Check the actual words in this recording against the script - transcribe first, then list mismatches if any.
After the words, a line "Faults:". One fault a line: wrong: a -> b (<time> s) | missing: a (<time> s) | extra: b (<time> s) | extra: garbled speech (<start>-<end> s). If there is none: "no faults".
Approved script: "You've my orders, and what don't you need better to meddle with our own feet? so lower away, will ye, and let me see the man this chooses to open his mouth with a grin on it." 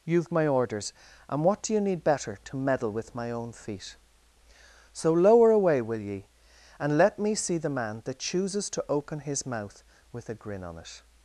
"You've my orders, and what do you need better to meddle with my own feet? so lower away, will ye, and let me see the man that chooses to open his mouth with a grin on it."
Faults:
wrong: don't -> do (1.6 s)
wrong: our -> my (3.1 s)
wrong: this -> that (8.0 s)